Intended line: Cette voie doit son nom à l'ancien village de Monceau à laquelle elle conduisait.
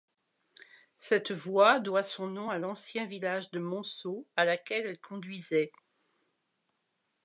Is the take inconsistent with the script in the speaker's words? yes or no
no